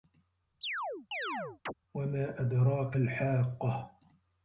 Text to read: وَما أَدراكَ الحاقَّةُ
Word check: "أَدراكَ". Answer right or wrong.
right